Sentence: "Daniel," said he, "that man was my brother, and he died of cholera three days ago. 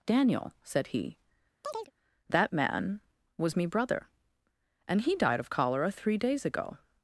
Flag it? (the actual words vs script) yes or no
yes